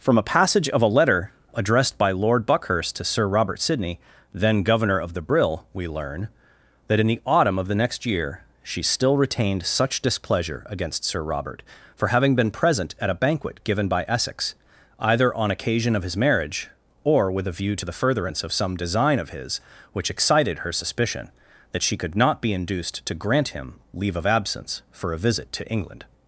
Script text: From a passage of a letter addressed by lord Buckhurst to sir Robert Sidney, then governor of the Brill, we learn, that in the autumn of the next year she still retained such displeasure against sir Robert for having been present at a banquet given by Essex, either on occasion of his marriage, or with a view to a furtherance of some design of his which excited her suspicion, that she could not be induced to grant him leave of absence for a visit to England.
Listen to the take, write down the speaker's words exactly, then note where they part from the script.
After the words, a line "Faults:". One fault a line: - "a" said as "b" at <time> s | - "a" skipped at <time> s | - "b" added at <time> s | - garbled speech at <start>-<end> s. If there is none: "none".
From a passage of a letter addressed by lord Buckhurst to sir Robert Sidney, then governor of the Brill, we learn, that in the autumn of the next year she still retained such displeasure against sir Robert for having been present at a banquet given by Essex, either on occasion of his marriage, or with a view to the furtherance of some design of his which excited her suspicion, that she could not be induced to grant him leave of absence for a visit to England.
Faults:
- "a" said as "the" at 17.8 s